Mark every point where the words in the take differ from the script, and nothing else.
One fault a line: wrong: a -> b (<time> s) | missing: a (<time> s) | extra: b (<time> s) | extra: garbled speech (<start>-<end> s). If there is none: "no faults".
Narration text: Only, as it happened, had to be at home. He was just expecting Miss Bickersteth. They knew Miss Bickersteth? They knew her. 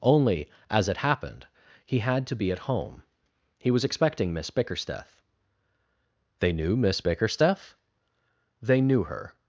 extra: he (1.9 s)
missing: just (3.8 s)